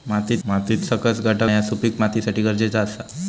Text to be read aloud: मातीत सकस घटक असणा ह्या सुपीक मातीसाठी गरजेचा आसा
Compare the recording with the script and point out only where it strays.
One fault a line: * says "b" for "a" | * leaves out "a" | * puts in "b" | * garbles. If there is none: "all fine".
* puts in "मातीत"
* leaves out "असणा"